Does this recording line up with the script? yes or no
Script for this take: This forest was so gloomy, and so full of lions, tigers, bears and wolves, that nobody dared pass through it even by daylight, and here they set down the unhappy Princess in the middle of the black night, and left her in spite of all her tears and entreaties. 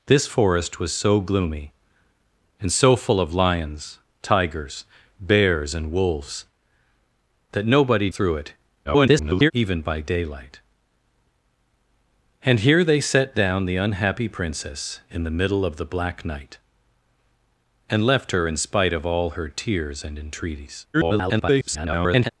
no